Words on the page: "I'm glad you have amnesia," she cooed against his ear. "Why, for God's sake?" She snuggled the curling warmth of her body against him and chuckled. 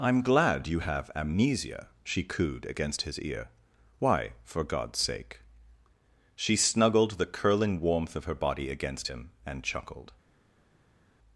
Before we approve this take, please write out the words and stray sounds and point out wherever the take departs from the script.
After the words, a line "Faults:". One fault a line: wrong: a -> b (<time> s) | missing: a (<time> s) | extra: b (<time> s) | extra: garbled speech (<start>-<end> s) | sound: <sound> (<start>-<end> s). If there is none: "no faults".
"I'm glad you have amnesia," she cooed against his ear. "Why, for God's sake?" She snuggled the curling warmth of her body against him and chuckled.
Faults:
no faults